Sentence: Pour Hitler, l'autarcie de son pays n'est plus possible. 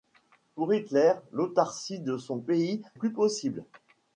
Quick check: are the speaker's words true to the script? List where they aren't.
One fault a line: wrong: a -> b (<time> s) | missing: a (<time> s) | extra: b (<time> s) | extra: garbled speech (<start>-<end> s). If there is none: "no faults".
missing: n'est (2.8 s)